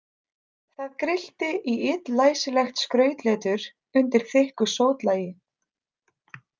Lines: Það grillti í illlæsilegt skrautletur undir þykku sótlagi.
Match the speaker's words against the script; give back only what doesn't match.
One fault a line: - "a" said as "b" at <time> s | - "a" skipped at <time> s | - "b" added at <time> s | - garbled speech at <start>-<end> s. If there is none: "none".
none